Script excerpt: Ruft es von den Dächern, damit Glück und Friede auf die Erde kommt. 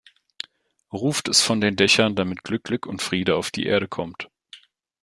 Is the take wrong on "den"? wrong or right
right